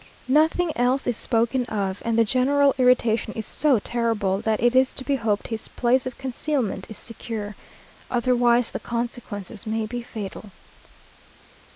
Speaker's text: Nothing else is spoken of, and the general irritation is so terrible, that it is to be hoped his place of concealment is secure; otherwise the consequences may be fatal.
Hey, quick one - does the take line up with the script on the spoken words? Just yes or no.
yes